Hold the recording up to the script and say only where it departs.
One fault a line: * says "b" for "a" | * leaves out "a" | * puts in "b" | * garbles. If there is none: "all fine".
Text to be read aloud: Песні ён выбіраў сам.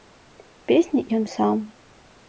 * leaves out "выбіраў"